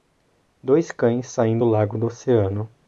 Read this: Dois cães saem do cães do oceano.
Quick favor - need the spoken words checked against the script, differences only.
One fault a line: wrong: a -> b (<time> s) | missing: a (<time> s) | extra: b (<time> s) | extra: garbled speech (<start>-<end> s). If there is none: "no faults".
wrong: cães -> lago (1.6 s)